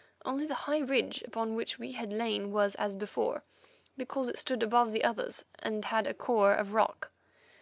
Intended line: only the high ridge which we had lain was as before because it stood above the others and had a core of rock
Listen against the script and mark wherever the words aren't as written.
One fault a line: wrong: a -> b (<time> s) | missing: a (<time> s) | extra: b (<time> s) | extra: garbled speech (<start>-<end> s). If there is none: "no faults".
extra: upon (1.3 s)